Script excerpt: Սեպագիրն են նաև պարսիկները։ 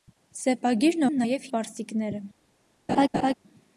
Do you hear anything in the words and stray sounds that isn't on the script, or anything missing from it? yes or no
yes